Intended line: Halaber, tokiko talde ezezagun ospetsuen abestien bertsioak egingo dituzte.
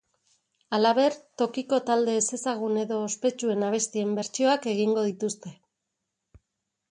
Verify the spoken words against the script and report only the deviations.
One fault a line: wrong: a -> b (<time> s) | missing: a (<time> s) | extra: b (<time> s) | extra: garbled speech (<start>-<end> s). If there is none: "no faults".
extra: edo (2.9 s)